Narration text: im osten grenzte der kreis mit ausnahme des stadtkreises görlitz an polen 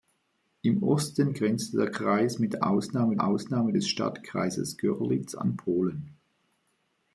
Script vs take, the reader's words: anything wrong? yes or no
yes